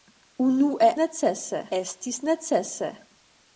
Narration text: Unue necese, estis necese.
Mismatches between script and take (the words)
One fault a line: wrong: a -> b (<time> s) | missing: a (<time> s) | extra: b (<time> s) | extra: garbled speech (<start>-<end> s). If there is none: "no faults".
no faults